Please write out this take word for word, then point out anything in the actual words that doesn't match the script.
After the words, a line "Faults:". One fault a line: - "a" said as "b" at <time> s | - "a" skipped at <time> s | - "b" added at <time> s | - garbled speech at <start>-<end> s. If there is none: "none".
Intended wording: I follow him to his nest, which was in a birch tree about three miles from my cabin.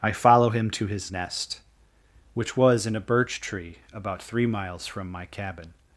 I follow him to his nest, which was in a birch tree about three miles from my cabin.
Faults:
none